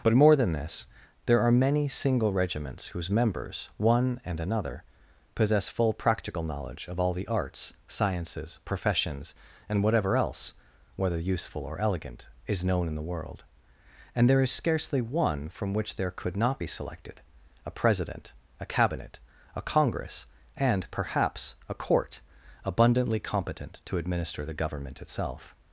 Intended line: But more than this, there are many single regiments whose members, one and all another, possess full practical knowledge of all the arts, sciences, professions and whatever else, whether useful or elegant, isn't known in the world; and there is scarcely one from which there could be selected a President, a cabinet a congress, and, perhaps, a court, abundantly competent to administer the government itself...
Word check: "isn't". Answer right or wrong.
wrong